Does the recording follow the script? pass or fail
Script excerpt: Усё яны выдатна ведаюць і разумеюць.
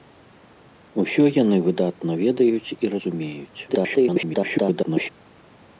fail